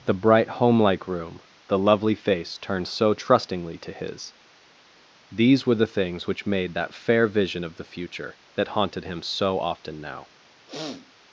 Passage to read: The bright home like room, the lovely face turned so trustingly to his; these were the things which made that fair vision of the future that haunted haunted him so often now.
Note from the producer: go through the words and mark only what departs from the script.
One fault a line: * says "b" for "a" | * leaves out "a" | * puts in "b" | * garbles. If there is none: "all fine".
* leaves out "haunted"